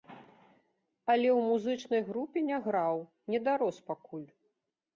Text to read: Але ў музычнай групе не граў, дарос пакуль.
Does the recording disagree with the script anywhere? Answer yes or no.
yes